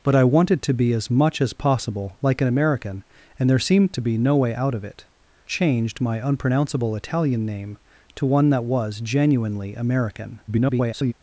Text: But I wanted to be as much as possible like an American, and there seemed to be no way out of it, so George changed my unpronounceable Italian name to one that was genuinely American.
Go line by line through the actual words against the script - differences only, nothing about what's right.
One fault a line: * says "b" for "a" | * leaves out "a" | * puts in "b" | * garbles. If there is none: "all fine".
* leaves out "so George"
* garbles